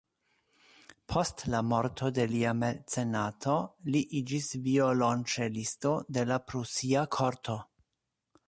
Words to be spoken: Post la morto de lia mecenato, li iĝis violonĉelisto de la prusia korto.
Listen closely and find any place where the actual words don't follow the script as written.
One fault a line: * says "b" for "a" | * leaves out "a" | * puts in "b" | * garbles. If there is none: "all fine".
all fine